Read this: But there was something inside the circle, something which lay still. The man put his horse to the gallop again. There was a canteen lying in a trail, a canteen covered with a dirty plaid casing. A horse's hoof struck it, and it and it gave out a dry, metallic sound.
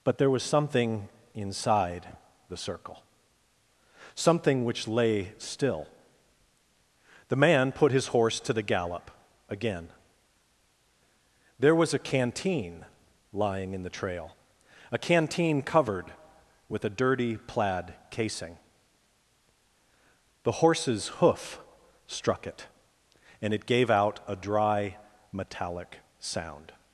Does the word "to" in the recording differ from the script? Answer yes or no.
no